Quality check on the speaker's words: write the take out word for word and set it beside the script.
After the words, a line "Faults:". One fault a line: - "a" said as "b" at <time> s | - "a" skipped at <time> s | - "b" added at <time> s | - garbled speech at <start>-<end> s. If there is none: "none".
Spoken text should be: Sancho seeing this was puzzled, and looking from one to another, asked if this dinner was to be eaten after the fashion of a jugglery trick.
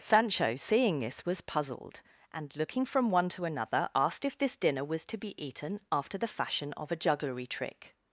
Sancho seeing this was puzzled, and looking from one to another, asked if this dinner was to be eaten after the fashion of a jugglery trick.
Faults:
none